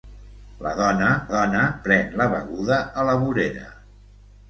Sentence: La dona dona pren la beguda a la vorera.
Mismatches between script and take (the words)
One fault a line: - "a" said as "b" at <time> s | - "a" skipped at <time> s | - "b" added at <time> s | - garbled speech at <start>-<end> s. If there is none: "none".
none